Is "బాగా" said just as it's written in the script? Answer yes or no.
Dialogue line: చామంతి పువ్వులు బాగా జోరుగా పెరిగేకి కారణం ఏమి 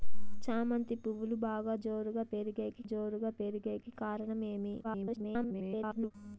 yes